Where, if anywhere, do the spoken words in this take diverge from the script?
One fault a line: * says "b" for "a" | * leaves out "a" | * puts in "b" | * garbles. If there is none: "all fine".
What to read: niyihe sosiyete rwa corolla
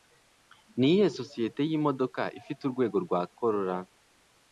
* puts in "yimodoka ifite urwego"